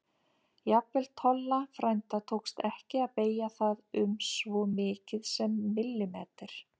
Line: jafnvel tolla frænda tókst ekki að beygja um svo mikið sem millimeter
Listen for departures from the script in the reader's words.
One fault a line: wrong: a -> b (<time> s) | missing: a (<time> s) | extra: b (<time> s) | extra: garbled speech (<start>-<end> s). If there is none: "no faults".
extra: það (3.6 s)